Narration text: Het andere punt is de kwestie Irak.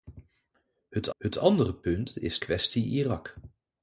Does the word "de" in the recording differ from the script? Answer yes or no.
yes